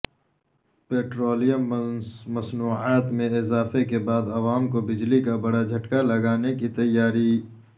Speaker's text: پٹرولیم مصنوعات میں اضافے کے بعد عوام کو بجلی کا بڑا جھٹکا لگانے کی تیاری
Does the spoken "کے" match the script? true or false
true